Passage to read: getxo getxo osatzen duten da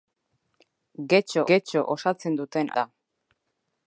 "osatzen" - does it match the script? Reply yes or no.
yes